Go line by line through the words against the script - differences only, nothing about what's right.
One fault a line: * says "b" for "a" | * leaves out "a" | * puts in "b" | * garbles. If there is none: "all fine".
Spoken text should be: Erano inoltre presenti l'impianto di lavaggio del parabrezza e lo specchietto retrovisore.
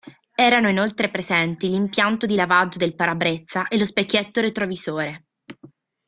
all fine